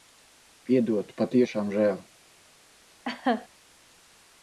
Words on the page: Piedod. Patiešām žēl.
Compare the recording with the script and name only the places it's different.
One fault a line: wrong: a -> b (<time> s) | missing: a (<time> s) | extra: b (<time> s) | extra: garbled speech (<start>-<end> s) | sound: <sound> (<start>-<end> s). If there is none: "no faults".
sound: laugh (3.1-3.5 s)